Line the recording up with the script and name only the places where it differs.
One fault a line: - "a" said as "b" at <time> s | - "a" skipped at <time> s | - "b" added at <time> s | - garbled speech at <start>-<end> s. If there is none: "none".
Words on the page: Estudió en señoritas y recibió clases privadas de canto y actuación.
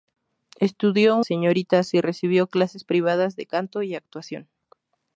none